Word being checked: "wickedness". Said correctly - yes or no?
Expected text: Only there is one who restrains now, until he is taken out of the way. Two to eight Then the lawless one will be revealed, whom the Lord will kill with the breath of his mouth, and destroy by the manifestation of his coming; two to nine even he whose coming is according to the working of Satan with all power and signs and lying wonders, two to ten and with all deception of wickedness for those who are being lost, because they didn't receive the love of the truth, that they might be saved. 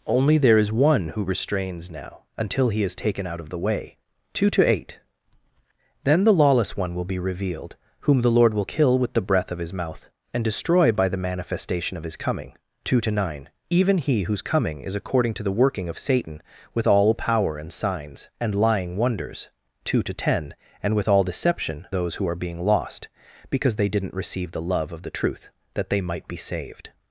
no